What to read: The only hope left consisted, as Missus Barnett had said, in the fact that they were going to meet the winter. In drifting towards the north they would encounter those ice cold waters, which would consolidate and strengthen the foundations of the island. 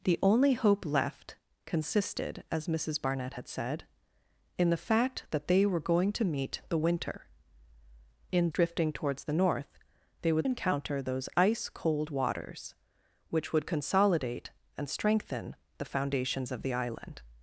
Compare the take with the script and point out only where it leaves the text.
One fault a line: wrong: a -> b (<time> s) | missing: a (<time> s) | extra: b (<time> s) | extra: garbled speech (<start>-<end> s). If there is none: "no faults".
no faults